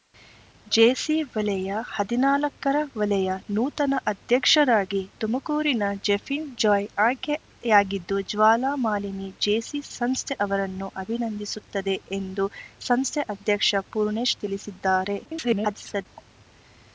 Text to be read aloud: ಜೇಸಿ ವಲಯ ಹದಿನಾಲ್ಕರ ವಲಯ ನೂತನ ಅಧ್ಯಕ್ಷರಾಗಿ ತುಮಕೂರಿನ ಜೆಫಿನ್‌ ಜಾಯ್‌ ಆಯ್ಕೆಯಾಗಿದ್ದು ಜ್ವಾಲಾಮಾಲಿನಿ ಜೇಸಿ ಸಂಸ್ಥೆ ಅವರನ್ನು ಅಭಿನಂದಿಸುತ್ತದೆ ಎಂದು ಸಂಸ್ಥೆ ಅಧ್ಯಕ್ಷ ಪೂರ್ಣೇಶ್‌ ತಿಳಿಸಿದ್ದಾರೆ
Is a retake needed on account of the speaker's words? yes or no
yes